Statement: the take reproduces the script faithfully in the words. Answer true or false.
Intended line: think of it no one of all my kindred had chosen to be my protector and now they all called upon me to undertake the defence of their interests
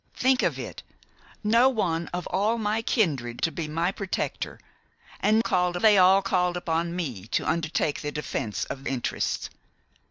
false